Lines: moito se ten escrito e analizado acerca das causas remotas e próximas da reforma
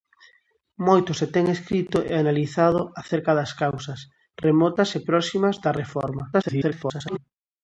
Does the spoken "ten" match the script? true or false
true